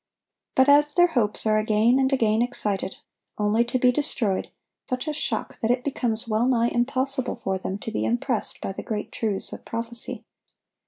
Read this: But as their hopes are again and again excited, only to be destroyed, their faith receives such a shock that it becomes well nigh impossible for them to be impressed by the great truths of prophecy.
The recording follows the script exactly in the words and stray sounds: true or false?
false